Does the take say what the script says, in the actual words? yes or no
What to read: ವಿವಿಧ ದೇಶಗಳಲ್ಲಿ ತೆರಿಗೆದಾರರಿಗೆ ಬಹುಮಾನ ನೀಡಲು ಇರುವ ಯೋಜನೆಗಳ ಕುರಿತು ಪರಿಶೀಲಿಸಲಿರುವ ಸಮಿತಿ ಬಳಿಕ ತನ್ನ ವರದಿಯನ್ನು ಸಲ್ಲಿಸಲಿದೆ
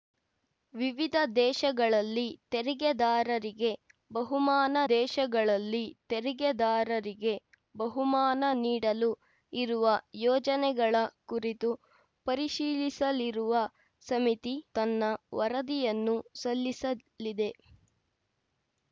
no